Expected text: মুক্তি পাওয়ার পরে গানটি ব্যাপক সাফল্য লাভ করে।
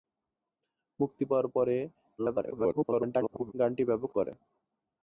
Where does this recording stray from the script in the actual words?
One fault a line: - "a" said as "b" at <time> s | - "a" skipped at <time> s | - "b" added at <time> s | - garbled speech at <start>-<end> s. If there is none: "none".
- garbled speech at 2.2-3.5 s
- "সাফল্য লাভ" skipped at 4.1 s